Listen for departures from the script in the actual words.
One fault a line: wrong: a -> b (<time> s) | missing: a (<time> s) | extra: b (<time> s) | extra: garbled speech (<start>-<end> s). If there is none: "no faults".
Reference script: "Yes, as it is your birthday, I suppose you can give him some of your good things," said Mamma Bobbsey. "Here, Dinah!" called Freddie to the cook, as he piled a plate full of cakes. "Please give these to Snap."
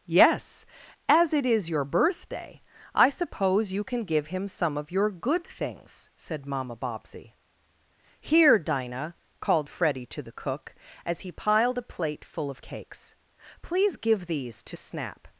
no faults